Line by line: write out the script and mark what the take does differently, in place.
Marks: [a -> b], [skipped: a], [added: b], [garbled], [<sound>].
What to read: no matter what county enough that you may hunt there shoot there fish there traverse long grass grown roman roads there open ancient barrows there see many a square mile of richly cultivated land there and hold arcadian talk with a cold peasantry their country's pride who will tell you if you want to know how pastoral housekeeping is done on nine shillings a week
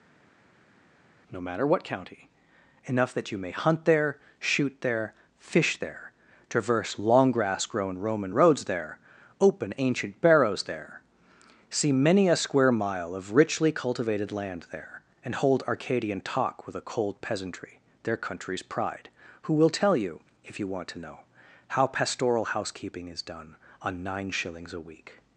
no matter what county enough that you may hunt there shoot there fish there traverse long grass grown roman roads there open ancient barrows there see many a square mile of richly cultivated land there and hold arcadian talk with a cold peasantry their country's pride who will tell you if you want to know how pastoral housekeeping is done on nine shillings a week